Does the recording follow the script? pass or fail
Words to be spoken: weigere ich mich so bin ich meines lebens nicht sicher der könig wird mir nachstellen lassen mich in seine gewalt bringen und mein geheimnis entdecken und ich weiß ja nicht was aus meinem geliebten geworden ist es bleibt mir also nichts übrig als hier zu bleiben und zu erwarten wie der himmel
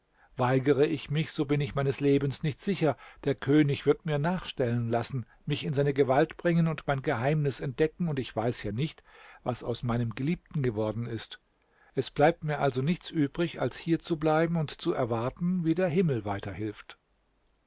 pass